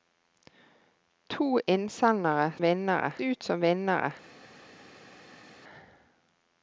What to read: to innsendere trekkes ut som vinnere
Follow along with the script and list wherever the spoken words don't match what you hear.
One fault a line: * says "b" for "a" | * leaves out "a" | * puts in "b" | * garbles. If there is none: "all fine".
* says "vinnere" for "trekkes"